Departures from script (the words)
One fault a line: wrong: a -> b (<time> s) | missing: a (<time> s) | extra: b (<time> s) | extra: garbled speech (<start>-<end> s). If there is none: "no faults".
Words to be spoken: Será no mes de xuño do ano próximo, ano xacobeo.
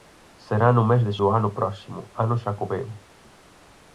missing: xuño (1.1 s)